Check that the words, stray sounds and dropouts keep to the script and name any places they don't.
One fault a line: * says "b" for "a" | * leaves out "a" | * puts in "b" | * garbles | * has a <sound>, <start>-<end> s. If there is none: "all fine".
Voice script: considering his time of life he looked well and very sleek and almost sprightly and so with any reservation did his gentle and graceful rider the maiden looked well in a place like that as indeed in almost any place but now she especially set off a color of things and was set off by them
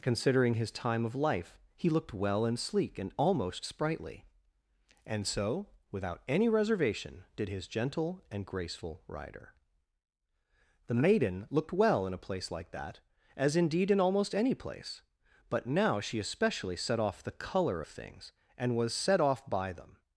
* leaves out "very"
* says "without" for "with"
* says "the" for "a"